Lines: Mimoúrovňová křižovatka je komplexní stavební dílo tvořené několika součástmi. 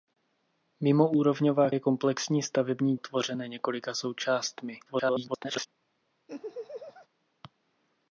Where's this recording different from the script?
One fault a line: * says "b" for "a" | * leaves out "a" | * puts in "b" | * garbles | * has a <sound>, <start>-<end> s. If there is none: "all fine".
* leaves out "křižovatka"
* leaves out "dílo"
* garbles
* has a laugh, 6.3-7.1 s